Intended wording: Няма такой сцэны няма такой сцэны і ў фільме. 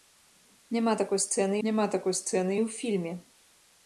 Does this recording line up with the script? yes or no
yes